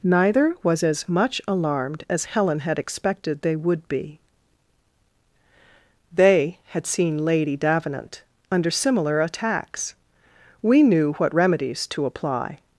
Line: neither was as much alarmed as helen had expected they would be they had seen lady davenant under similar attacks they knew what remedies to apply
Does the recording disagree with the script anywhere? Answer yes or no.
yes